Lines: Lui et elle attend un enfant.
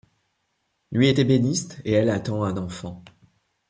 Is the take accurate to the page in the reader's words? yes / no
no